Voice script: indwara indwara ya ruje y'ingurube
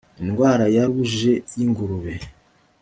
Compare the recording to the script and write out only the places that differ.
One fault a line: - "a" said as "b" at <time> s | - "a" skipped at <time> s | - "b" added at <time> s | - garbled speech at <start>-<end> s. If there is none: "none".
- "indwara" skipped at 0.7 s